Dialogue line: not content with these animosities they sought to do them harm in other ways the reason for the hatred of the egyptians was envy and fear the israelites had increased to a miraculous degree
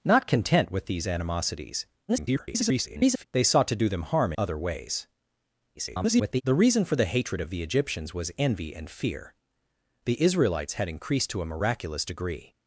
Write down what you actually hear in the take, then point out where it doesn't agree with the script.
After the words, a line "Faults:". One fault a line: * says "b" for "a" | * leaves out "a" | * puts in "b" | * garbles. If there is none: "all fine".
not content with these animosities [garbled] they sought to do them harm other ways [garbled] the reason for the hatred of the egyptians was envy and fear the israelites had increased to a miraculous degree
Faults:
* garbles
* leaves out "in"
* garbles